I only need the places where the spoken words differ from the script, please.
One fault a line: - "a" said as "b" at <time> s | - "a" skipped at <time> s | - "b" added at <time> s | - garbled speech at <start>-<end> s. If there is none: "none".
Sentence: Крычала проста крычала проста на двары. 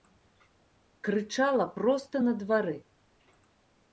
- "крычала проста" skipped at 2.2 s